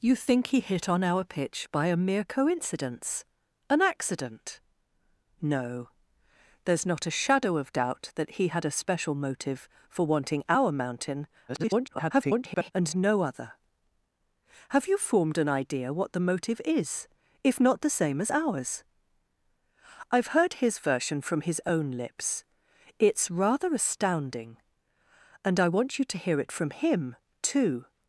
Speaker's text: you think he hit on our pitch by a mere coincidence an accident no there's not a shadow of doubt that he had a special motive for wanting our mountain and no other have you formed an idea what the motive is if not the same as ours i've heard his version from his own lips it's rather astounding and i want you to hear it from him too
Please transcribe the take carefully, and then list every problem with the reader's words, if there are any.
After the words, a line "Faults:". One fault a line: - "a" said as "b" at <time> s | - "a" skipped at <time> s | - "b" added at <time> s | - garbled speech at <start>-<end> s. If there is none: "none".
you think he hit on our pitch by a mere coincidence an accident no there's not a shadow of doubt that he had a special motive for wanting our mountain [garbled] and no other have you formed an idea what the motive is if not the same as ours i've heard his version from his own lips it's rather astounding and i want you to hear it from him too
Faults:
- garbled speech at 11.5-12.7 s